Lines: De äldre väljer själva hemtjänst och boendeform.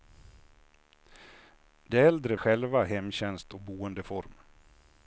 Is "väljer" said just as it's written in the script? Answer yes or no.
no